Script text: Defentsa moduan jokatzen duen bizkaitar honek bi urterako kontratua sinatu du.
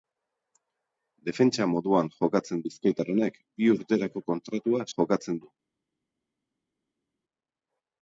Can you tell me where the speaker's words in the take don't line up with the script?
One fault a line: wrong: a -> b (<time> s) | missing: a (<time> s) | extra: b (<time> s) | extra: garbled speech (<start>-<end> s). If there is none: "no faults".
missing: duen (2.6 s)
wrong: sinatu -> jokatzen (4.9 s)